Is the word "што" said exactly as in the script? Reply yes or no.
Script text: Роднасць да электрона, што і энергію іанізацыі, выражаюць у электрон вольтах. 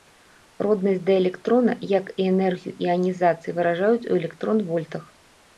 no